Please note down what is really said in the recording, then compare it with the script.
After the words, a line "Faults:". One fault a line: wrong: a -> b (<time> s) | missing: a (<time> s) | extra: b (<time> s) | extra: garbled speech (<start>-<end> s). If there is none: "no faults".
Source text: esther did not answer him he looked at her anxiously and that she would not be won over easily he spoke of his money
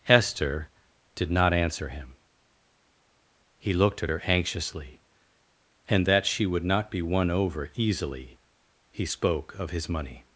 esther did not answer him he looked at her anxiously and that she would not be won over easily he spoke of his money
Faults:
no faults